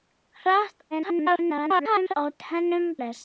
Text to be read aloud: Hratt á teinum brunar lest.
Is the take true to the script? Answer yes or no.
no